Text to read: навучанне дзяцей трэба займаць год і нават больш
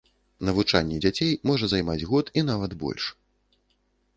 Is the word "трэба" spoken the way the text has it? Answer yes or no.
no